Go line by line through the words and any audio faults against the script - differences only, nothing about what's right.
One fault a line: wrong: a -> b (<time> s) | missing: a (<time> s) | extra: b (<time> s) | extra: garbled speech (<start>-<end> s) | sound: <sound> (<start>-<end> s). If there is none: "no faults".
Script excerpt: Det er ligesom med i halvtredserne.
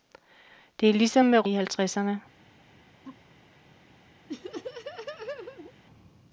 sound: laugh (3.0-3.3 s)
sound: laugh (4.3-5.7 s)